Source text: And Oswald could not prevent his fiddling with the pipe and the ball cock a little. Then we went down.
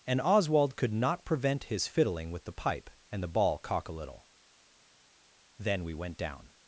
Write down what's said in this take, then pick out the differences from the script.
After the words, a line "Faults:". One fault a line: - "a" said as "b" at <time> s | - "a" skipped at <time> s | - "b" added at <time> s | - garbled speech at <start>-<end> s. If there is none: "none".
And Oswald could not prevent his fiddling with the pipe and the ball cock a little. Then we went down.
Faults:
none